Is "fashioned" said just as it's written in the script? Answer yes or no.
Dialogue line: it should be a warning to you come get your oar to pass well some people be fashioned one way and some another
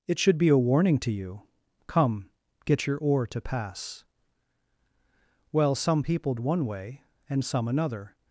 no